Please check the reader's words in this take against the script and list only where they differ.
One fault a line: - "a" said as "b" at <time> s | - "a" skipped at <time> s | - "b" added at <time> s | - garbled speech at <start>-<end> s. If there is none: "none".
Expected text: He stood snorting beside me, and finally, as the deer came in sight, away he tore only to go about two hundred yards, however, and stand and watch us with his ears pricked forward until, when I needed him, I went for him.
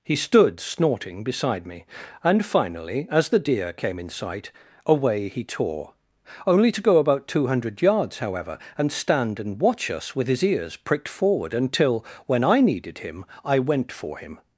none